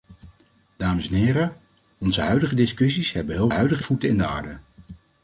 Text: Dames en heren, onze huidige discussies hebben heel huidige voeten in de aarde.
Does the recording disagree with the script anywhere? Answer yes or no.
no